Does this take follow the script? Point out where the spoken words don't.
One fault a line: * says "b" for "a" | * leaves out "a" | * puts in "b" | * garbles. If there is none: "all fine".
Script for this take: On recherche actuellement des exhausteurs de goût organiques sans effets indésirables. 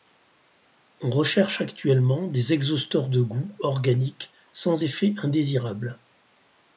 all fine